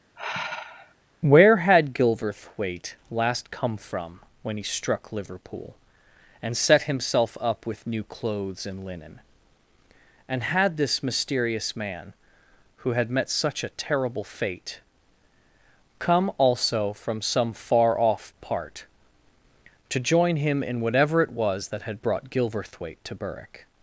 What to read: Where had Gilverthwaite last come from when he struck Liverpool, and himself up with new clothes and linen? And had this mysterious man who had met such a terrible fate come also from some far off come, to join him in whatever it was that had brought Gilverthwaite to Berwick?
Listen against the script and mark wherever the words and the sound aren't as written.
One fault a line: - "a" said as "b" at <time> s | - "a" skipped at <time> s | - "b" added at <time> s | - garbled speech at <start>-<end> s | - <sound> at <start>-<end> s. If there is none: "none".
- sigh at 0.2-0.9 s
- "set" added at 6.5 s
- "come" said as "part" at 18.4 s